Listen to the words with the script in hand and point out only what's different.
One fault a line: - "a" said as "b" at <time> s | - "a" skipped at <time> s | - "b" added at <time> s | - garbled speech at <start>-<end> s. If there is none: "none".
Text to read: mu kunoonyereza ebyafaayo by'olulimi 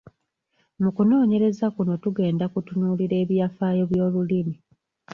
- "kuno tugenda kutunuulira" added at 1.8 s